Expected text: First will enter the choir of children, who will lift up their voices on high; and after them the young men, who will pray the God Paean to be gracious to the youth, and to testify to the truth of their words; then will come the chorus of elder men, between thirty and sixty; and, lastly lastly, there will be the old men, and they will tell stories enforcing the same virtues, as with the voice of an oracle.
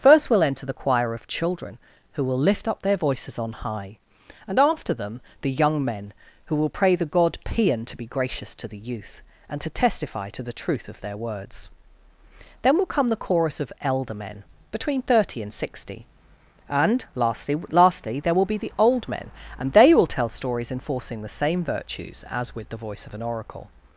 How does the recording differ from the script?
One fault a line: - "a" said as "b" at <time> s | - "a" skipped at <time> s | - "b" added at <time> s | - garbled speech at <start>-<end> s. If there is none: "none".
none